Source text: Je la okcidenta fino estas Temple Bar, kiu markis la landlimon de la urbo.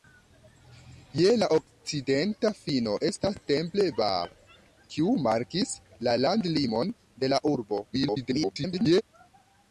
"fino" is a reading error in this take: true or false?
false